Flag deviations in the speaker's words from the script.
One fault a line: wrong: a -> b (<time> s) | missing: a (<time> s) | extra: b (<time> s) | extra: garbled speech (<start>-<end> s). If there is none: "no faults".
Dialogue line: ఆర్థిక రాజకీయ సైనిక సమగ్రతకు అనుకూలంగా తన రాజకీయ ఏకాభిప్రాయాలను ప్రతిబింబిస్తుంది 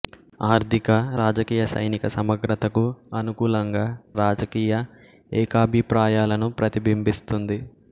missing: తన (3.8 s)